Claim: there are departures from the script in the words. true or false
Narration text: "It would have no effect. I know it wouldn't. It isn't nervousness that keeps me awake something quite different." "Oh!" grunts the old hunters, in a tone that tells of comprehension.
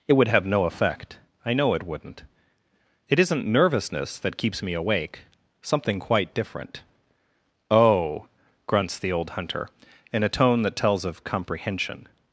true